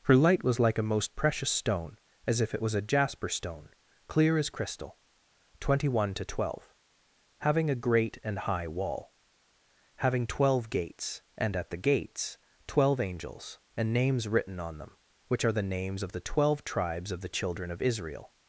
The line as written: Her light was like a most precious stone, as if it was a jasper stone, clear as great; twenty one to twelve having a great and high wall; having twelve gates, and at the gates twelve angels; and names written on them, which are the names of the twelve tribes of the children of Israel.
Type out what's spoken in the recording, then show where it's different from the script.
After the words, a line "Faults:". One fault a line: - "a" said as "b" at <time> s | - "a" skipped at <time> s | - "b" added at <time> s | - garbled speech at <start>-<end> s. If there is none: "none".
Her light was like a most precious stone, as if it was a jasper stone, clear as crystal; twenty one to twelve having a great and high wall; having twelve gates, and at the gates twelve angels; and names written on them, which are the names of the twelve tribes of the children of Israel.
Faults:
- "great" said as "crystal" at 4.5 s